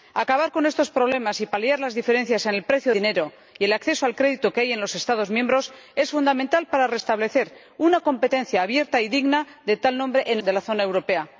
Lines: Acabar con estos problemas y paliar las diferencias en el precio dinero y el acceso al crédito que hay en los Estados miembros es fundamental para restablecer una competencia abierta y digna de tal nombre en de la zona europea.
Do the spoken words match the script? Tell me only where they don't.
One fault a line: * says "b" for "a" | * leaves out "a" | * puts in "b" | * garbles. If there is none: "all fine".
all fine